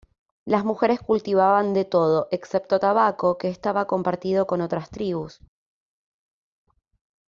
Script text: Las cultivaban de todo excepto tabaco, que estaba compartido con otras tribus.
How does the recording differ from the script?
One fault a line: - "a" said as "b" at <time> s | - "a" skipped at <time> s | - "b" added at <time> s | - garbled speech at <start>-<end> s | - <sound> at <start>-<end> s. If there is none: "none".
- "mujeres" added at 0.7 s